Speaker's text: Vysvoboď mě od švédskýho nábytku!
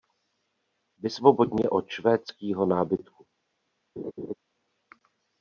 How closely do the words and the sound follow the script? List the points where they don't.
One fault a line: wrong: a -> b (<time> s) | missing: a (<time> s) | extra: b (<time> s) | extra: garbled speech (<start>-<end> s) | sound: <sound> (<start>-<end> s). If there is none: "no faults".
sound: laugh (4.0-4.3 s)